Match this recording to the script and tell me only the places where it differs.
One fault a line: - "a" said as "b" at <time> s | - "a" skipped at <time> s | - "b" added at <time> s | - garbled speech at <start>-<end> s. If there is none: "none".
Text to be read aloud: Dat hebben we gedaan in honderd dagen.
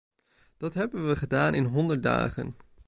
none